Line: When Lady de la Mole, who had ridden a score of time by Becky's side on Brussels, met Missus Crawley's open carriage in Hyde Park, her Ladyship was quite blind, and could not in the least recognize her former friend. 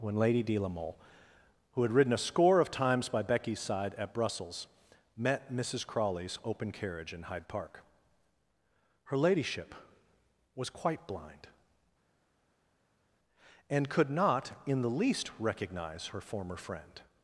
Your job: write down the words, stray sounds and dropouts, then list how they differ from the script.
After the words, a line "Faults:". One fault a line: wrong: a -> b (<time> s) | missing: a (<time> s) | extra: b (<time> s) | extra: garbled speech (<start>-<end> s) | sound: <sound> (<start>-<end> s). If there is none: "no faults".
When Lady de la Mole, who had ridden a score of times by Becky's side at Brussels, met Missus Crawley's open carriage in Hyde Park, her Ladyship was quite blind, and could not in the least recognize her former friend.
Faults:
wrong: time -> times (2.7 s)
wrong: on -> at (4.0 s)